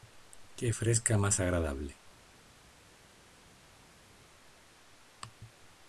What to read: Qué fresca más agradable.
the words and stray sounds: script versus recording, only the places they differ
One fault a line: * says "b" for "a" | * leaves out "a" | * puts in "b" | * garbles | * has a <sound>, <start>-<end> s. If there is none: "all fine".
all fine